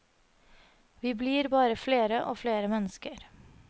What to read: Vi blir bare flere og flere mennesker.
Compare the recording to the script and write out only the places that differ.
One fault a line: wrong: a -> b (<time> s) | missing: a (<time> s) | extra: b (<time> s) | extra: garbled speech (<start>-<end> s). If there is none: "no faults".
no faults